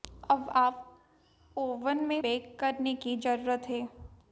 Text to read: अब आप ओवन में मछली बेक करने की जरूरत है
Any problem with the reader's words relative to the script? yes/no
yes